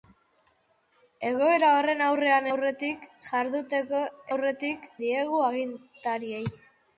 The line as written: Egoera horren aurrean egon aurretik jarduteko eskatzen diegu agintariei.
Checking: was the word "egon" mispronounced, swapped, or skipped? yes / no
yes